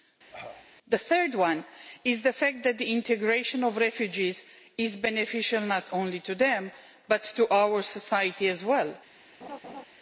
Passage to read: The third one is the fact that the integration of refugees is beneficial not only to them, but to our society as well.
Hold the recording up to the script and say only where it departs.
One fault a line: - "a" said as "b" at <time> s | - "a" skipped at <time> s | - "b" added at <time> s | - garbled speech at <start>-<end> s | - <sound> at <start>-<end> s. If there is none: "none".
- cough at 0.3-0.7 s
- laugh at 9.4-9.9 s